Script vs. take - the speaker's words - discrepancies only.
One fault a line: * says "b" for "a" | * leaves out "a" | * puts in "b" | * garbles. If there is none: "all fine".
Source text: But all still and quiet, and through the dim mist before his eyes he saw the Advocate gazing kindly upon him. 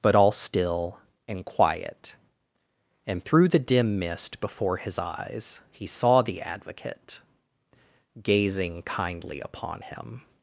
all fine